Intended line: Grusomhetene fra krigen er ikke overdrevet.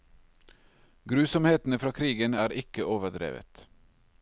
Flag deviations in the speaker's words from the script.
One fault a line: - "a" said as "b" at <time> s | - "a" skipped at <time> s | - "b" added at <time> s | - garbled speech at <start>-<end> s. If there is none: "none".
none